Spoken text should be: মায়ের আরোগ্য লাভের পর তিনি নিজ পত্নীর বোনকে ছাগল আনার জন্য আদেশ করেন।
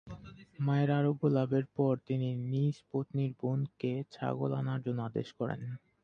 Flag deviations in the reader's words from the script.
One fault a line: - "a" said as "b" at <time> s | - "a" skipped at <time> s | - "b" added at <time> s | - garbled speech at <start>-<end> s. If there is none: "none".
none